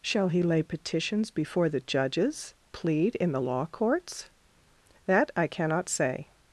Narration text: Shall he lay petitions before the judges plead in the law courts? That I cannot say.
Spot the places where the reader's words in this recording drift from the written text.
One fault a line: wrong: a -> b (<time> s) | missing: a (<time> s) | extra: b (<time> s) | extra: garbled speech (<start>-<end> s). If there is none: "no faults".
no faults